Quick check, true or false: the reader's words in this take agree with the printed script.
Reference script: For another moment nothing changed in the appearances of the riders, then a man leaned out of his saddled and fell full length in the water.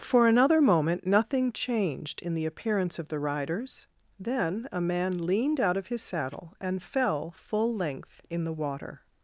false